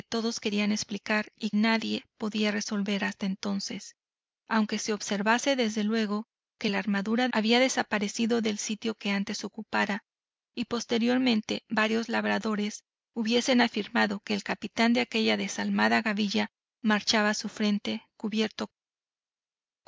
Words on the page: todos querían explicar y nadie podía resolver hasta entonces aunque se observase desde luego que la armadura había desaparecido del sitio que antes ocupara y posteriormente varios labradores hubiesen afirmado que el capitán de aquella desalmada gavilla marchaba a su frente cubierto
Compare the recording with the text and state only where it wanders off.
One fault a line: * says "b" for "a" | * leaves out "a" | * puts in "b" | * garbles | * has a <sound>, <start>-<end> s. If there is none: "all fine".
all fine